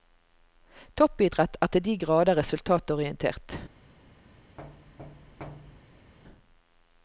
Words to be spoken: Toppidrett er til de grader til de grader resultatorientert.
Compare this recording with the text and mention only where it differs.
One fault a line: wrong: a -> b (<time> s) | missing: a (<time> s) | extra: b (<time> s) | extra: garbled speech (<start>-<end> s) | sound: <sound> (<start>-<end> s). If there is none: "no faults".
missing: til de grader (2.4 s)
sound: thud (4.6-6.1 s)